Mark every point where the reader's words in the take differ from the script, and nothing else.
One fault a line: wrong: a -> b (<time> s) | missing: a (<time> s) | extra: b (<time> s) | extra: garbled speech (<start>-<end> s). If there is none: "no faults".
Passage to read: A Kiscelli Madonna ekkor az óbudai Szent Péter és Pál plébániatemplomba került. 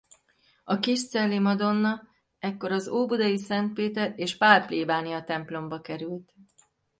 no faults